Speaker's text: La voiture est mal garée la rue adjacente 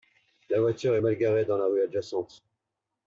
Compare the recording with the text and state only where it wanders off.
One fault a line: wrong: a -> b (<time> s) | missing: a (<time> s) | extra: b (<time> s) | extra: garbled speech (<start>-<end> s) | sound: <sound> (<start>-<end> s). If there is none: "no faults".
extra: dans (1.4 s)